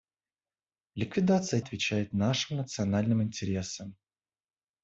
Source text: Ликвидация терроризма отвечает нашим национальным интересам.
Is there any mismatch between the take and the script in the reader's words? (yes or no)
yes